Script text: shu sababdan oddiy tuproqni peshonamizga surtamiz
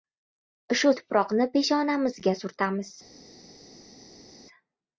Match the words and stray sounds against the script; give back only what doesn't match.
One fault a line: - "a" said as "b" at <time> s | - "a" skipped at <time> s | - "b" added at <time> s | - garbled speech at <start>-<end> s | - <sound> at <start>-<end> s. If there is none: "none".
- "sababdan oddiy" skipped at 0.9 s